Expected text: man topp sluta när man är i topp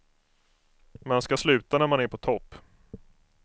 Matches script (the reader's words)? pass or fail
fail